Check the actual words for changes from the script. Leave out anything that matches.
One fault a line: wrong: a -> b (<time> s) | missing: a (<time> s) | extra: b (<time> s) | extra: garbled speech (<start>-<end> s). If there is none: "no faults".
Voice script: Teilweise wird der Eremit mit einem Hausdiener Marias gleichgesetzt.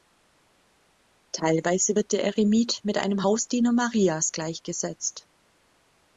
no faults